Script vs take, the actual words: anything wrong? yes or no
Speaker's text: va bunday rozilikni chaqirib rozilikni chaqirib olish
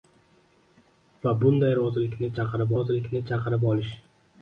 no